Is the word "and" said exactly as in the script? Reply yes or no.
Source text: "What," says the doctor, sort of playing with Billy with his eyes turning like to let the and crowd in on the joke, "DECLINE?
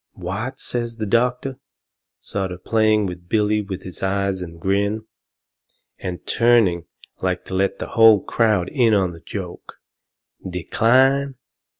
no